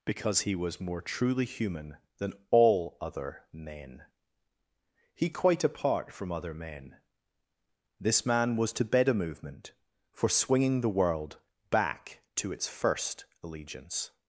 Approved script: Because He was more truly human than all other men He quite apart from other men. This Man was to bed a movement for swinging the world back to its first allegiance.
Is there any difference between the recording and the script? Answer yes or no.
no